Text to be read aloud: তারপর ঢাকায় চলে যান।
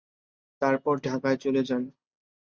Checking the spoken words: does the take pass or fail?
pass